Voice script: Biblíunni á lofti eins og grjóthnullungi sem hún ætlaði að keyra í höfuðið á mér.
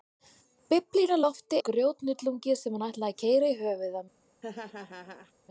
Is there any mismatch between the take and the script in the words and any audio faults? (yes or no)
yes